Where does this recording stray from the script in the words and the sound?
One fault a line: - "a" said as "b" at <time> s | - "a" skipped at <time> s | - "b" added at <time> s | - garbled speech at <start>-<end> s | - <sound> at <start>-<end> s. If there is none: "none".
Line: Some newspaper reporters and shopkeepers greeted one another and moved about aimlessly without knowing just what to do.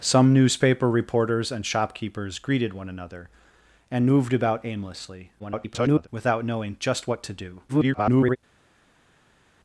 - garbled speech at 5.4-6.1 s
- garbled speech at 7.7-8.4 s